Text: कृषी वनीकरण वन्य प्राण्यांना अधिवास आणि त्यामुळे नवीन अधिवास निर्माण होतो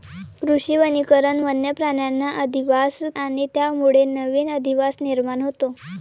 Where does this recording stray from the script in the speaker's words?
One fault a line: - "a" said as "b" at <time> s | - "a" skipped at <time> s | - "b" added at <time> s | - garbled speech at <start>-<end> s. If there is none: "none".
none